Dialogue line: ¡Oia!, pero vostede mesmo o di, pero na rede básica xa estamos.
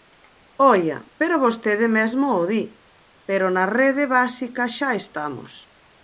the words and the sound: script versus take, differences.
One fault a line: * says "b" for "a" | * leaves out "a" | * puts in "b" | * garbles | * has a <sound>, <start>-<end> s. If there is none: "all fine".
all fine